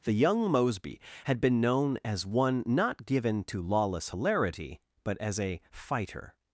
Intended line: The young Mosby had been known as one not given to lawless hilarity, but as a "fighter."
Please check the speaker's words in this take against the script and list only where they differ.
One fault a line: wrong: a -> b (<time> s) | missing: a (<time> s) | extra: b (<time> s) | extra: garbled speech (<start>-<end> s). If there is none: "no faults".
no faults